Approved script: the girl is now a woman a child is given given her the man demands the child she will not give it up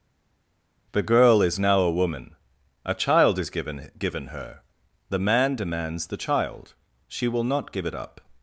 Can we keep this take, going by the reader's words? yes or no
yes